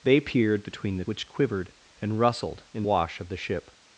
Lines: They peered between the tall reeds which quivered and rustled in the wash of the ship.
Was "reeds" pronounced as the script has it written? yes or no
no